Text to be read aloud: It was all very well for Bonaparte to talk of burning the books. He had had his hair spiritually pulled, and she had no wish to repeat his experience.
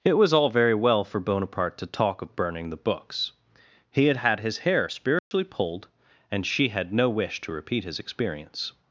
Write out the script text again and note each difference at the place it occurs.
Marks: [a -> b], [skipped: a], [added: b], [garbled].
It was all very well for Bonaparte to talk of burning the books. He had had his hair spiritually pulled, and she had no wish to repeat his experience.